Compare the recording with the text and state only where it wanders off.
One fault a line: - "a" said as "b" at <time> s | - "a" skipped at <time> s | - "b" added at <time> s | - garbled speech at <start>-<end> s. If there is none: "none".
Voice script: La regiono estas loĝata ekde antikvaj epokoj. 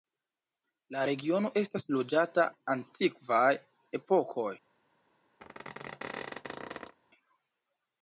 - "ekde" skipped at 2.5 s